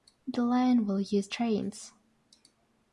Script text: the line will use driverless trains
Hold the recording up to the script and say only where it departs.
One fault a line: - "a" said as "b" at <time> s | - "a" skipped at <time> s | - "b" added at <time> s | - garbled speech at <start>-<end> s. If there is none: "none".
- "driverless" skipped at 1.3 s